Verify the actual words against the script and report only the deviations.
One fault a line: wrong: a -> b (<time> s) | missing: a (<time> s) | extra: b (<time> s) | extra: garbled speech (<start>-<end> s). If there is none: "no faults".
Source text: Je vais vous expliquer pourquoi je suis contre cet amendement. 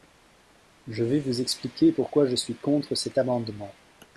no faults